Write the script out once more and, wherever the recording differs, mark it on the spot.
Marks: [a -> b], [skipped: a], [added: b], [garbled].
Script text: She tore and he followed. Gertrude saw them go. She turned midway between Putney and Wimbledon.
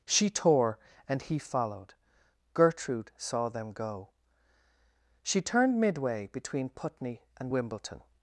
She tore and he followed. Gertrude saw them go. She turned midway between Putney and Wimbledon.